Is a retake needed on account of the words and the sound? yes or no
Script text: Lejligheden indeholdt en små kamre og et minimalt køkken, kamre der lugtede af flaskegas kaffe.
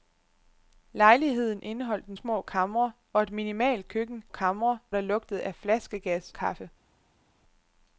no